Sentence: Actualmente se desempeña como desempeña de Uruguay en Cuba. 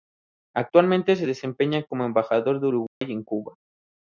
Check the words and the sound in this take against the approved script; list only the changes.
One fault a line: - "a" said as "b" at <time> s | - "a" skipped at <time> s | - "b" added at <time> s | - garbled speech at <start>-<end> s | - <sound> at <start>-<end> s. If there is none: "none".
- "desempeña" said as "embajador" at 2.1 s
- dropout at 2.9-3.0 s